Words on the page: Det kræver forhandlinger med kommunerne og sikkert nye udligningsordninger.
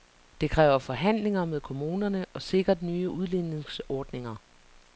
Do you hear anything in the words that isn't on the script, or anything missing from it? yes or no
no